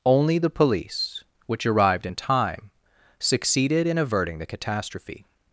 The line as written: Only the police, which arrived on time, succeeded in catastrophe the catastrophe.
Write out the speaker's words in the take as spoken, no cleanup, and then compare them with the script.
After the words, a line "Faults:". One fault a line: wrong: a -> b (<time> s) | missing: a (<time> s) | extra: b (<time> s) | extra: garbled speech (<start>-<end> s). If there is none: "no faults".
Only the police, which arrived in time, succeeded in averting the catastrophe.
Faults:
wrong: on -> in (2.0 s)
wrong: catastrophe -> averting (4.0 s)